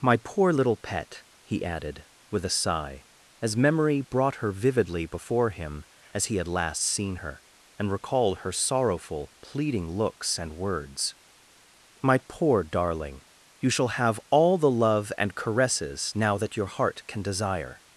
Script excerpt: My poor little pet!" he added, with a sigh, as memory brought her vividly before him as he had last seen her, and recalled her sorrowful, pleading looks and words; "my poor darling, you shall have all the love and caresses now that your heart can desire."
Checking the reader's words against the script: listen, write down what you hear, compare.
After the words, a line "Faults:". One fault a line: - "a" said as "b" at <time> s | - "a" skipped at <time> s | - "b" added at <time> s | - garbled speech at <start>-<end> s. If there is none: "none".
My poor little pet!" he added, with a sigh, as memory brought her vividly before him as he had last seen her, and recalled her sorrowful, pleading looks and words; "my poor darling, you shall have all the love and caresses now that your heart can desire."
Faults:
none